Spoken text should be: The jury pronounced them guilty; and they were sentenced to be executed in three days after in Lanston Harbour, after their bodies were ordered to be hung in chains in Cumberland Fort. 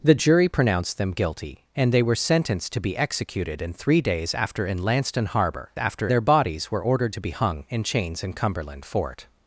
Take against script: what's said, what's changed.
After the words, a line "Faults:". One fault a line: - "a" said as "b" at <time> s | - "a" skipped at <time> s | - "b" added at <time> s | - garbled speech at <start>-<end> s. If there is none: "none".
The jury pronounced them guilty; and they were sentenced to be executed in three days after in Lanston Harbour, after their bodies were ordered to be hung in chains in Cumberland Fort.
Faults:
none